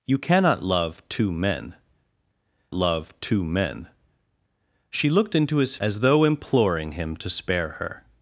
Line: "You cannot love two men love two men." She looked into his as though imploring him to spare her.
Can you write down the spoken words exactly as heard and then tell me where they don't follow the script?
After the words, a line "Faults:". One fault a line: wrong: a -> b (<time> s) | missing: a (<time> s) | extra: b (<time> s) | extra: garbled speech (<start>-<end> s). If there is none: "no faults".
"You cannot love two men love two men." She looked into his as though imploring him to spare her.
Faults:
no faults